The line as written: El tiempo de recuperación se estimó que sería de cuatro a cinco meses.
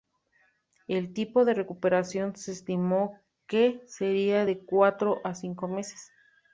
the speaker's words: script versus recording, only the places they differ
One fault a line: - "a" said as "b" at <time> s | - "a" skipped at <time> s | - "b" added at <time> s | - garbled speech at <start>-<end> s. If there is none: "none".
none